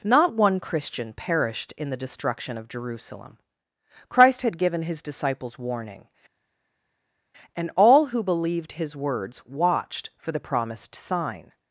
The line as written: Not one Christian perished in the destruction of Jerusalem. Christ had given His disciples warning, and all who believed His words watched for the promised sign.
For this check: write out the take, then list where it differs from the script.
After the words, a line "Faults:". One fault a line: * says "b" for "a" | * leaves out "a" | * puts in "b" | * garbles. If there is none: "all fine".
Not one Christian perished in the destruction of Jerusalem. Christ had given His disciples warning, and all who believed His words watched for the promised sign.
Faults:
all fine